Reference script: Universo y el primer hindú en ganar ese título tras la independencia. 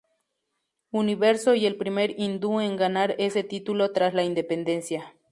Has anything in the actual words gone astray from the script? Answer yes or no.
no